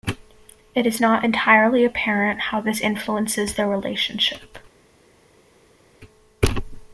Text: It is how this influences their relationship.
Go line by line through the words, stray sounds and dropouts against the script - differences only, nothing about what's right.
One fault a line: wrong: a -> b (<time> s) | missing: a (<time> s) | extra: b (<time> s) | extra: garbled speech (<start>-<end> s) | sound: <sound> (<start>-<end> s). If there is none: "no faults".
extra: not entirely apparent (1.0 s)